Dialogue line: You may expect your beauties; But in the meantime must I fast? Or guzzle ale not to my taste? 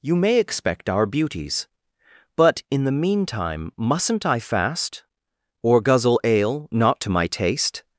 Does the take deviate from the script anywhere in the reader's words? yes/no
yes